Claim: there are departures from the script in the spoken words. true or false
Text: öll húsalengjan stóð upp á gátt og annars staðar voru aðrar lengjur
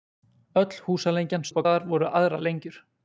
true